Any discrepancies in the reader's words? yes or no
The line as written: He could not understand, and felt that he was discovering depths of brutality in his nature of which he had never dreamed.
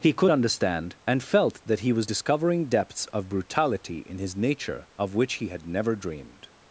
yes